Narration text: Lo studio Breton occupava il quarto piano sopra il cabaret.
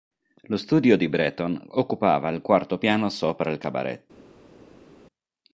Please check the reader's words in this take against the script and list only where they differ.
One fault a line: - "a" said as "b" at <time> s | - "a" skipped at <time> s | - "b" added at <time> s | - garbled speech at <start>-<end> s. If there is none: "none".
- "di" added at 1.0 s